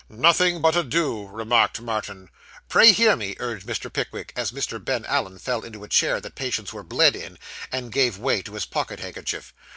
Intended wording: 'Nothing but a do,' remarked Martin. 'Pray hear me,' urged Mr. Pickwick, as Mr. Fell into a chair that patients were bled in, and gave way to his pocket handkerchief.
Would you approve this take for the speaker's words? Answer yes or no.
no